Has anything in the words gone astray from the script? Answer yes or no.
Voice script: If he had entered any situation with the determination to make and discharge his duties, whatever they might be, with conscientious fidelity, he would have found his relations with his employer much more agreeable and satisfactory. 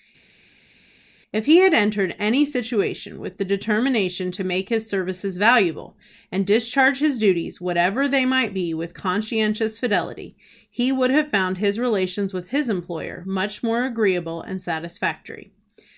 yes